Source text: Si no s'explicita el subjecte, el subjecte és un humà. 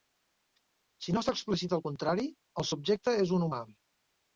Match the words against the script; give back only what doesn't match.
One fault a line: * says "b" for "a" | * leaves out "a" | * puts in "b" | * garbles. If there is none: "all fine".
* says "contrari" for "subjecte"